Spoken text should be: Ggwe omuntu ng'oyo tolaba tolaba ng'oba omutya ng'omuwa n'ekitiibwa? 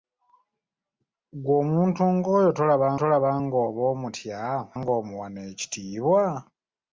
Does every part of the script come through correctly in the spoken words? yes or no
yes